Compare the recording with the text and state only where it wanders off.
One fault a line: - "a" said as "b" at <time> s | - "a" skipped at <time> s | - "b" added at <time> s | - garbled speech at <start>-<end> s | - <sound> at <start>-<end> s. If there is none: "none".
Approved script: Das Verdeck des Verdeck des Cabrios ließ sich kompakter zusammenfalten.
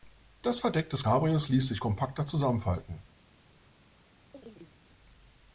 - "Verdeck des" skipped at 1.1 s
- chirp at 4.3-4.8 s